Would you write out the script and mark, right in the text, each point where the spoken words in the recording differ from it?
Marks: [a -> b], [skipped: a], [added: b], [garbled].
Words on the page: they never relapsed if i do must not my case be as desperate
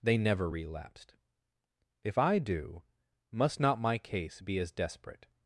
they never relapsed if i do must not my case be as desperate